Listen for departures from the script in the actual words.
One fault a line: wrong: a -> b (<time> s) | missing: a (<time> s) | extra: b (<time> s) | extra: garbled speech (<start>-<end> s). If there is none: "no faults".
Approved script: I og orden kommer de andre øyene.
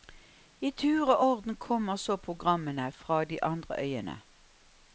extra: tur (0.7 s)
extra: så programmene fra (2.0 s)